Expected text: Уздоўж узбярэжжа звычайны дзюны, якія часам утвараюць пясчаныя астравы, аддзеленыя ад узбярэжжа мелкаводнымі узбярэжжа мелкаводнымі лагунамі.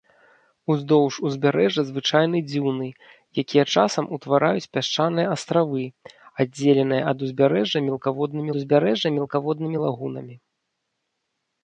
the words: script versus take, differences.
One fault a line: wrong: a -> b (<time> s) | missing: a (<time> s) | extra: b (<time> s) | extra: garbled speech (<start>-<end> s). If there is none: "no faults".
no faults